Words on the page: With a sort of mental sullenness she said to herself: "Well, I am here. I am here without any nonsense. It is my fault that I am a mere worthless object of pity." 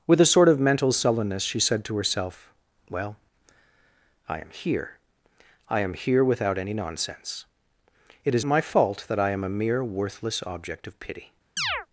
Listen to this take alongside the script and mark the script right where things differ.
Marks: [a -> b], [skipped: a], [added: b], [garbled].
With a sort of mental sullenness she said to herself: "Well, I am here. I am here without any nonsense. It is my fault that I am a mere worthless object of pity."